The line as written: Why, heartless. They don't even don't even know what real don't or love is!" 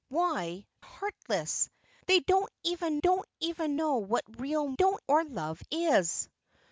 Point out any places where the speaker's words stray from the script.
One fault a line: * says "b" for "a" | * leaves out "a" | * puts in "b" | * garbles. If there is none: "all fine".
all fine